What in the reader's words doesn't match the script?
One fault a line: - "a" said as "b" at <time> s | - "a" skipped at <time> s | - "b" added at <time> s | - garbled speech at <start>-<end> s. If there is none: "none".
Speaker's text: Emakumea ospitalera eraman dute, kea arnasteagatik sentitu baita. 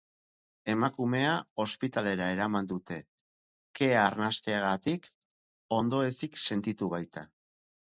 - "ondoezik" added at 5.8 s